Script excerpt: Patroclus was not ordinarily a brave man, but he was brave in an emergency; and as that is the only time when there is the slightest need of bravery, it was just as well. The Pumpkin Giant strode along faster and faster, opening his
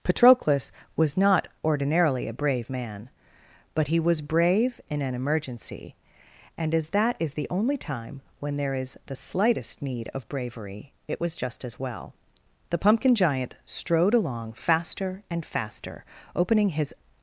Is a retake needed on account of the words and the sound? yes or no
no